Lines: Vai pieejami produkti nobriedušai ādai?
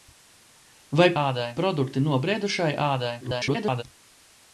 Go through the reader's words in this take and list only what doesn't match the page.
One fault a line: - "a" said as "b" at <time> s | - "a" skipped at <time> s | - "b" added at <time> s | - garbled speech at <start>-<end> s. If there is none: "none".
- "pieejami" said as "ādai" at 1.2 s
- garbled speech at 3.2-3.8 s